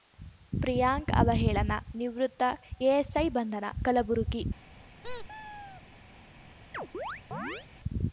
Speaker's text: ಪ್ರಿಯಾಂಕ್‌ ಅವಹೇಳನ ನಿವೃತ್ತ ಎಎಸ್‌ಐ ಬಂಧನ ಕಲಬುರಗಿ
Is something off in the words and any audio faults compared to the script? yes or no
yes